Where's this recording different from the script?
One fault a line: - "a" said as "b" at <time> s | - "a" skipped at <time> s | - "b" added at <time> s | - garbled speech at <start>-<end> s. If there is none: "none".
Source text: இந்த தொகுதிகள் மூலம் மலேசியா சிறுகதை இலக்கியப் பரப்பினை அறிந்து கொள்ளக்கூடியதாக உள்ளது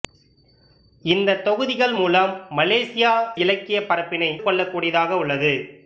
- "சிறுகதை" skipped at 3.1 s
- "அறிந்து" skipped at 4.3 s